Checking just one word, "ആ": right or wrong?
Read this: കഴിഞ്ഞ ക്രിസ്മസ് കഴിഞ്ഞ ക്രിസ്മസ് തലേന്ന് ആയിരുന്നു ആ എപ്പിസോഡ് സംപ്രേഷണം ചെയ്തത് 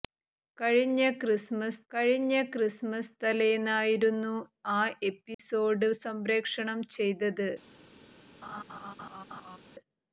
right